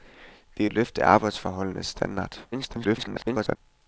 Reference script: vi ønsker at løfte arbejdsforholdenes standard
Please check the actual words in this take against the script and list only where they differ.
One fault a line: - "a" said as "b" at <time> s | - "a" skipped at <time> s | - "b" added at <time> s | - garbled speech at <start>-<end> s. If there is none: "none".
- "ønsker" skipped at 0.7 s
- garbled speech at 2.5-3.6 s